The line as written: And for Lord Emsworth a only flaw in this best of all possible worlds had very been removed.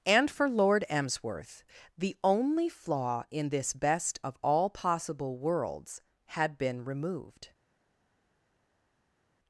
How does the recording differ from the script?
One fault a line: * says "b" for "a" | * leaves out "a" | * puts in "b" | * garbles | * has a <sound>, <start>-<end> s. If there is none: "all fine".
* says "the" for "a"
* leaves out "very"